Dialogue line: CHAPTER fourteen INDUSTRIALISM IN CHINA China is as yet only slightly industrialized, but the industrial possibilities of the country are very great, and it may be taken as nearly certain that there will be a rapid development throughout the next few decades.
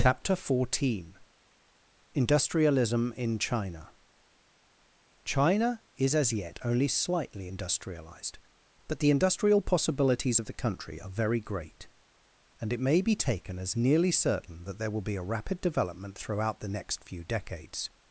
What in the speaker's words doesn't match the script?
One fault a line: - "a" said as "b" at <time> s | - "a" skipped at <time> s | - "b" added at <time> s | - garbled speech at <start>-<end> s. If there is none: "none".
none